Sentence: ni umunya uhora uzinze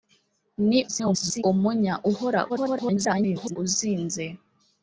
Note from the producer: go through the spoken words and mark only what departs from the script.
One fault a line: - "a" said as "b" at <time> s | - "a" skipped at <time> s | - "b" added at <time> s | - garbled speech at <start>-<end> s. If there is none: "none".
- garbled speech at 0.9-1.4 s
- garbled speech at 2.5-3.6 s